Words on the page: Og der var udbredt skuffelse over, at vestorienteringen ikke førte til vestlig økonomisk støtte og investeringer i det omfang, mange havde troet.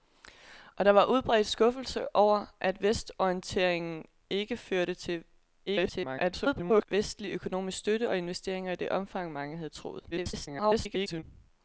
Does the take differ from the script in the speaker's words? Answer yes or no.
yes